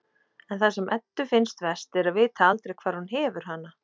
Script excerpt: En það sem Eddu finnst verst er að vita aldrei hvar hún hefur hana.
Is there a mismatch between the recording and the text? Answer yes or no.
no